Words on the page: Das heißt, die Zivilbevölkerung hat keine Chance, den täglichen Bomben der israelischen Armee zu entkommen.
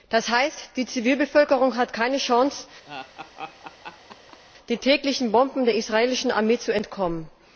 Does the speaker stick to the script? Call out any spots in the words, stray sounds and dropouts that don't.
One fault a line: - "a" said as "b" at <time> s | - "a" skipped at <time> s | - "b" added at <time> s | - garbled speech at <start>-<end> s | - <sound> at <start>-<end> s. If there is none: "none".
- laugh at 2.9-4.4 s